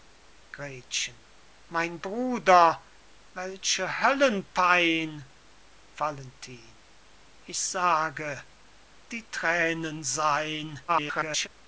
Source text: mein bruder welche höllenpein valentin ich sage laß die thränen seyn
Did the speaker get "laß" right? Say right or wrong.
wrong